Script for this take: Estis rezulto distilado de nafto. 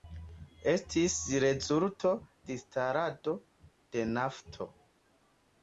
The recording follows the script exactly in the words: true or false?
true